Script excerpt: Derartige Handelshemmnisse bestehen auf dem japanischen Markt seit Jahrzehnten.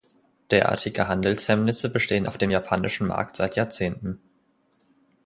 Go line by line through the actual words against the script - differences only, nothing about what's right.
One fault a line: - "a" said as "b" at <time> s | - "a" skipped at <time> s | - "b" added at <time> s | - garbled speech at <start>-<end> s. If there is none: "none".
none